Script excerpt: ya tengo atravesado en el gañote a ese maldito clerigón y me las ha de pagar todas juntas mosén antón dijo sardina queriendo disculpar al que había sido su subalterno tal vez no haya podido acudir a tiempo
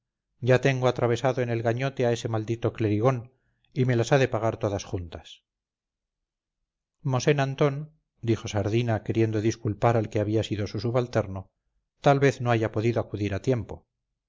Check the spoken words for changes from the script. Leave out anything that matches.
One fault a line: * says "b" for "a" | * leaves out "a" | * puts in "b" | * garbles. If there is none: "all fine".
all fine